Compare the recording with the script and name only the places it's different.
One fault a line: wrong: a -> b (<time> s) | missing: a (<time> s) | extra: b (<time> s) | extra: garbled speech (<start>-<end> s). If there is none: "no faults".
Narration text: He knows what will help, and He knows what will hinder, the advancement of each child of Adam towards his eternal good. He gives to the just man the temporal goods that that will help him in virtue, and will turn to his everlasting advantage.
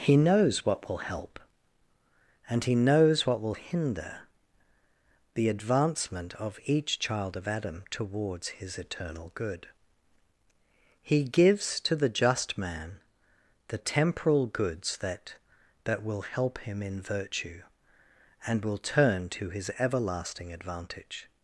no faults